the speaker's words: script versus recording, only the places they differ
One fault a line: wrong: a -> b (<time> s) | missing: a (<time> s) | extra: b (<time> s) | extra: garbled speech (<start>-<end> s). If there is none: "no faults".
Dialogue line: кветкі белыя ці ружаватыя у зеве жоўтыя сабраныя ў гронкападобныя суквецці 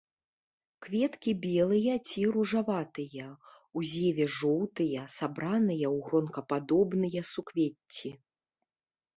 no faults